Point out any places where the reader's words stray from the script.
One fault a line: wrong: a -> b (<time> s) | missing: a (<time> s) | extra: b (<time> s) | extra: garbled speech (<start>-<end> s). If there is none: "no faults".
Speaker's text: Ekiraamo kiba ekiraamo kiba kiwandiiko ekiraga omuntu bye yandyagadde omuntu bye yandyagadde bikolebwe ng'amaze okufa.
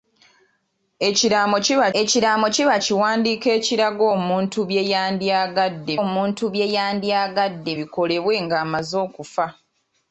no faults